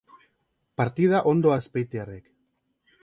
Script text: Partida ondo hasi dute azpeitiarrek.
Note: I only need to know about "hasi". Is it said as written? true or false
false